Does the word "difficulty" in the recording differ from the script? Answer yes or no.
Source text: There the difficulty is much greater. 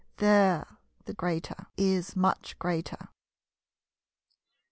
yes